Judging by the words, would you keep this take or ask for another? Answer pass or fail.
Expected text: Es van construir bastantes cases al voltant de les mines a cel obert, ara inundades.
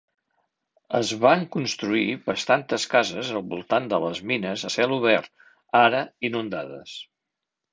pass